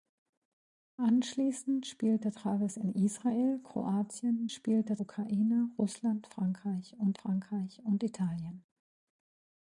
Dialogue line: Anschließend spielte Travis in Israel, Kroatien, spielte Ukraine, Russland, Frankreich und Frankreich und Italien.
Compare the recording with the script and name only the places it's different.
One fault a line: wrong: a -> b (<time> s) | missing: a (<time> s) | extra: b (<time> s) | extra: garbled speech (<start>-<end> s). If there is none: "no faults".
no faults